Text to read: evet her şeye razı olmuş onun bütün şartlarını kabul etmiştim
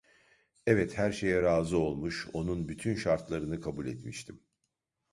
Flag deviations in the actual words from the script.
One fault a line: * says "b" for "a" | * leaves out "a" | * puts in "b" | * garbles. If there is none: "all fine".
all fine